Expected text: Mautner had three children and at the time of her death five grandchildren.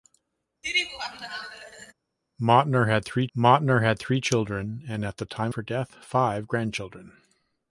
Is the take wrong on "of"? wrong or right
wrong